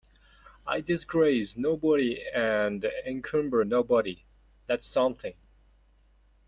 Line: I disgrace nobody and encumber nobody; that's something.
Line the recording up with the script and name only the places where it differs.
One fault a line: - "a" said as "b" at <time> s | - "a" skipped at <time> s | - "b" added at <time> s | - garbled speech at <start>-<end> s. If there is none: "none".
none